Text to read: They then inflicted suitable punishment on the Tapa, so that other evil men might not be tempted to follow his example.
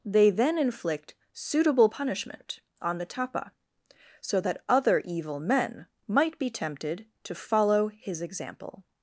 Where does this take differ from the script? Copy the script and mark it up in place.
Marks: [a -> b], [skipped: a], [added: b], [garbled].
They then [inflicted -> inflict] suitable punishment on the Tapa, so that other evil men might [skipped: not] be tempted to follow his example.